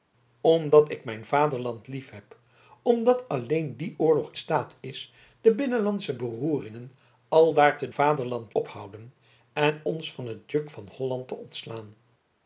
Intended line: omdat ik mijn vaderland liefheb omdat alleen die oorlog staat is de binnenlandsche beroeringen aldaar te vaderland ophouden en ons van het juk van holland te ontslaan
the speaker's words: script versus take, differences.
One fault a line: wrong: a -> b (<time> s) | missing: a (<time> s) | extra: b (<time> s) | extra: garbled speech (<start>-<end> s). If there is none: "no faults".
no faults